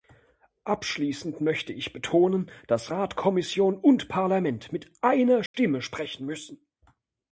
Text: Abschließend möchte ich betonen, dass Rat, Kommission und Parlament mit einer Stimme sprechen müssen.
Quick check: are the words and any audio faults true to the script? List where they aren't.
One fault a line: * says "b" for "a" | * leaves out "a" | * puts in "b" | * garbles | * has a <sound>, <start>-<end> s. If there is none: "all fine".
* has a dropout, 5.5-5.5 s